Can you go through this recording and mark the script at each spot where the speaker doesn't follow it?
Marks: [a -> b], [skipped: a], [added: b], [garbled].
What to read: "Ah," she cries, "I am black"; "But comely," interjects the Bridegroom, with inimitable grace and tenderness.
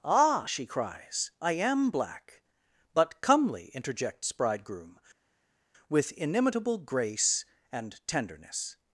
"Ah," she cries, "I am black"; "But comely," interjects [skipped: the] Bridegroom, with inimitable grace and tenderness.